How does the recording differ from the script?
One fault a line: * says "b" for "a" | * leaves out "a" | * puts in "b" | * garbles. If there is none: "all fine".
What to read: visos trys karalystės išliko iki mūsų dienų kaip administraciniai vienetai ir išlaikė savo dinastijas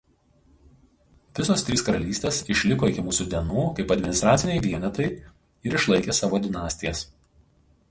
all fine